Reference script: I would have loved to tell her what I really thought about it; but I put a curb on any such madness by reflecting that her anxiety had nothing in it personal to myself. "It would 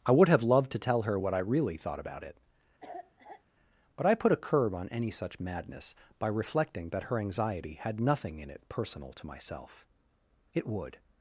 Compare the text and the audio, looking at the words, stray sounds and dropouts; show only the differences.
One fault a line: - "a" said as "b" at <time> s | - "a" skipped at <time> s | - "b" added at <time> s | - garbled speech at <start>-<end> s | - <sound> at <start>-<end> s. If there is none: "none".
- cough at 2.8-3.4 s